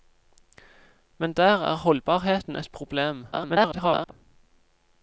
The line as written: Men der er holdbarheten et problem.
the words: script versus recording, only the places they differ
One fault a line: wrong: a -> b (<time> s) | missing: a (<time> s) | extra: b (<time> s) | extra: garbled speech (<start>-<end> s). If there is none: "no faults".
extra: garbled speech (3.3-4.1 s)